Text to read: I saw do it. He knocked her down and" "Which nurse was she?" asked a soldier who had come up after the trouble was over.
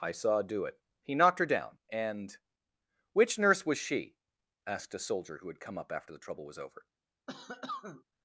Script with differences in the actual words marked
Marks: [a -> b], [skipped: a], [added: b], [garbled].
I saw do it. He knocked her down and" "Which nurse was she?" asked a soldier who had come up after the trouble was over.